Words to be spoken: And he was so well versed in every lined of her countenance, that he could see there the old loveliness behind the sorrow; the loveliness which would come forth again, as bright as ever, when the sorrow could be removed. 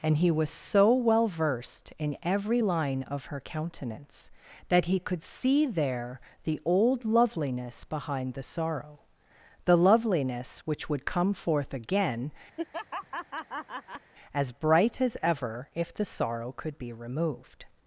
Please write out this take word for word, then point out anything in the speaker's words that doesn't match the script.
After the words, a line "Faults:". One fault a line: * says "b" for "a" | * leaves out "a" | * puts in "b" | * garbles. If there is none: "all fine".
And he was so well versed in every line of her countenance, that he could see there the old loveliness behind the sorrow; the loveliness which would come forth again, as bright as ever, if the sorrow could be removed.
Faults:
* says "line" for "lined"
* says "if" for "when"